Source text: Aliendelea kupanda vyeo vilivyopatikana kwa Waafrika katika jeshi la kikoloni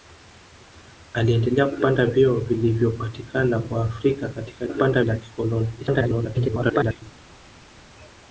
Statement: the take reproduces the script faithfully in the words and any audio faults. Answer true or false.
false